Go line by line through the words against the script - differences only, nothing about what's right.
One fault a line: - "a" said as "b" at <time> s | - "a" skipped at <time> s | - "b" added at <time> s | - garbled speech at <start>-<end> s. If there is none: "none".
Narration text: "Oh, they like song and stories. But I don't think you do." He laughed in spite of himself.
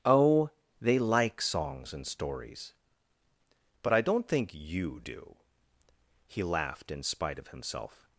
- "song" said as "songs" at 1.4 s